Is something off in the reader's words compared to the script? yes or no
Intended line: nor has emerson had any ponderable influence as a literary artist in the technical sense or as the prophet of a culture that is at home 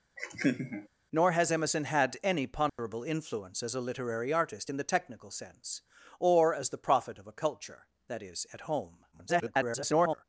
yes